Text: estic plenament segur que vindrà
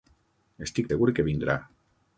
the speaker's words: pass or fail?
fail